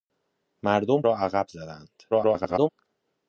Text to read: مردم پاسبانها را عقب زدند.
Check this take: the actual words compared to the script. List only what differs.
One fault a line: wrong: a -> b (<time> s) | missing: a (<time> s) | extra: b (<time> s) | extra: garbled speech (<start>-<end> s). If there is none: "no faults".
missing: پاسبانها (1.0 s)
extra: garbled speech (2.1-2.7 s)